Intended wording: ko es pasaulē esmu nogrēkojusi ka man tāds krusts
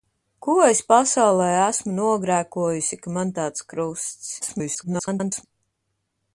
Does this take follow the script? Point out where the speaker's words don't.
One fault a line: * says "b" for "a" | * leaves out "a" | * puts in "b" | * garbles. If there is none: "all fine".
* garbles